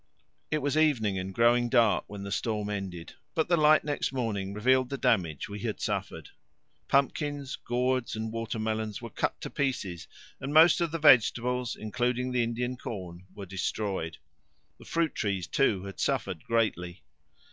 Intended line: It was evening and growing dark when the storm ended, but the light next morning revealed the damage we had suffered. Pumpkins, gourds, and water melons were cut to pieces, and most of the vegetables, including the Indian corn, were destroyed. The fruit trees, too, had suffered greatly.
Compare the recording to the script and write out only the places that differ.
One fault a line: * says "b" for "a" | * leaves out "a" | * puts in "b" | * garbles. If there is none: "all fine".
all fine